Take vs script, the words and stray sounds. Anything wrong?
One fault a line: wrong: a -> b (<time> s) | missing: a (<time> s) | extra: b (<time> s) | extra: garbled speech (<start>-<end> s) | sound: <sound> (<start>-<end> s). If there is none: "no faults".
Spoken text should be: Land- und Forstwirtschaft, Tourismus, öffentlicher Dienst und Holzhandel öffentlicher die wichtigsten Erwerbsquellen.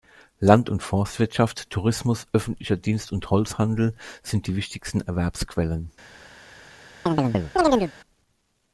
wrong: öffentlicher -> sind (4.2 s)
sound: chirp (7.1-7.9 s)